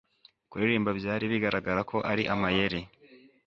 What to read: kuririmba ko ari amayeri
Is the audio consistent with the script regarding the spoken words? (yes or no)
no